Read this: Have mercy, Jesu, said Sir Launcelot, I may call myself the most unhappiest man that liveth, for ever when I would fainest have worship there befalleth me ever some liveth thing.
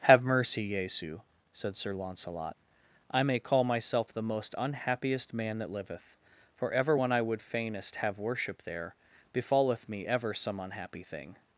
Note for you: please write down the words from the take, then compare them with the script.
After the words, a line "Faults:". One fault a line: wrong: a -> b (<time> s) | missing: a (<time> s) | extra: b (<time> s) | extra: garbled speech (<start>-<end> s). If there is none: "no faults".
Have mercy, Jesu, said Sir Launcelot, I may call myself the most unhappiest man that liveth, for ever when I would fainest have worship there befalleth me ever some unhappy thing.
Faults:
wrong: liveth -> unhappy (10.6 s)